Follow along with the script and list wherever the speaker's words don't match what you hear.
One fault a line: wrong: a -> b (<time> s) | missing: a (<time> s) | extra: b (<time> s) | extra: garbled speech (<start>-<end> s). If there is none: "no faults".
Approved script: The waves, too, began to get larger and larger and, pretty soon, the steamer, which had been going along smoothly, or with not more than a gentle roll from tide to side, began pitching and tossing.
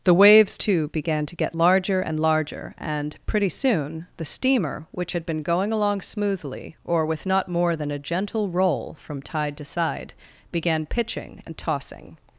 no faults